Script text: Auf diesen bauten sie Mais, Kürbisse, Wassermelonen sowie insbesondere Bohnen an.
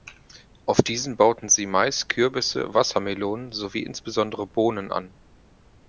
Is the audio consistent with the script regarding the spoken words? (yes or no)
yes